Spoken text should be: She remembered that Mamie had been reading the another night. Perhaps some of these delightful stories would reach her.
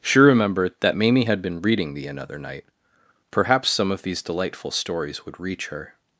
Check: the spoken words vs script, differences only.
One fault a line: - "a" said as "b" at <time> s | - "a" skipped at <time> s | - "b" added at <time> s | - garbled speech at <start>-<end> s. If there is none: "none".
none